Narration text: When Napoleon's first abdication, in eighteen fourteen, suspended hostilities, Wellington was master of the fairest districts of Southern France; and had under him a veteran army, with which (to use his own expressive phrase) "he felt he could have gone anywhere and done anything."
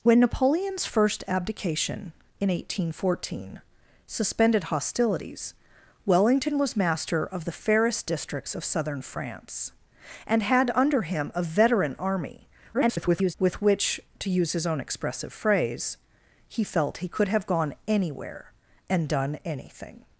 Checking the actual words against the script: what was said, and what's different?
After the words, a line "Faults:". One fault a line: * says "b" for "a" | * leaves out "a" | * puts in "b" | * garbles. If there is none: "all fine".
When Napoleon's first abdication, in eighteen fourteen, suspended hostilities, Wellington was master of the fairest districts of Southern France; and had under him a veteran army, [garbled] with which (to use his own expressive phrase) "he felt he could have gone anywhere and done anything."
Faults:
* garbles